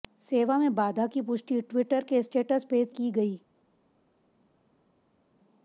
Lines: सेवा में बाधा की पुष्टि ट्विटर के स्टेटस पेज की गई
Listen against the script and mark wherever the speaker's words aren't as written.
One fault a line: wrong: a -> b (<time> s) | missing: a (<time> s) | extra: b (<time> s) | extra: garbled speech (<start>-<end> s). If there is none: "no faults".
no faults